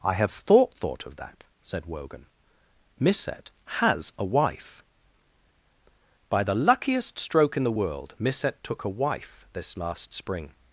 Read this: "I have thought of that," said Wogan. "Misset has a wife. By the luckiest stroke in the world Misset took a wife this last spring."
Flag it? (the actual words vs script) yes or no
yes